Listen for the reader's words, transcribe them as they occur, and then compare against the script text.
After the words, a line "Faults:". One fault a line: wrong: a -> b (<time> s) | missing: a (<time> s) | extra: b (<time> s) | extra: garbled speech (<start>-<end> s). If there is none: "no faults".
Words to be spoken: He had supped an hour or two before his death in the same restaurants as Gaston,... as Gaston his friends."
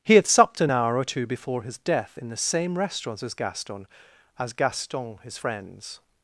He had supped an hour or two before his death in the same restaurants as Gaston,... as Gaston his friends."
Faults:
no faults